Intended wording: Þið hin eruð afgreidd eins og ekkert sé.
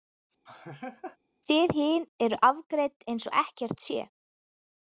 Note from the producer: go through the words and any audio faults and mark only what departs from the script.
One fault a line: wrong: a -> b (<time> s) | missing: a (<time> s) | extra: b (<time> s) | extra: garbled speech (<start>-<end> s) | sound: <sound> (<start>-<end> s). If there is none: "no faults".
sound: laugh (0.5-1.2 s)